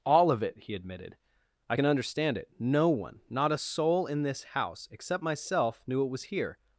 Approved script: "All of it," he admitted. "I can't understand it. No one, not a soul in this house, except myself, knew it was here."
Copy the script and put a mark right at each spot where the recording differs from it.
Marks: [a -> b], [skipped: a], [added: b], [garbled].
"All of it," he admitted. "I [can't -> can] understand it. No one, not a soul in this house, except myself, knew it was here."